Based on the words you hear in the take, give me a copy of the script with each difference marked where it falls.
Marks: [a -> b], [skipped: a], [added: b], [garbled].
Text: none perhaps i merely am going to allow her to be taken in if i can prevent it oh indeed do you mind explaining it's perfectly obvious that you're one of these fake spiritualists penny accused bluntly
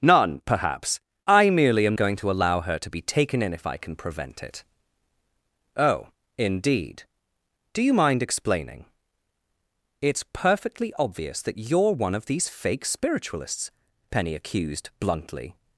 none perhaps i merely am going to allow her to be taken in if i can prevent it oh indeed do you mind explaining it's perfectly obvious that you're one of these fake spiritualists penny accused bluntly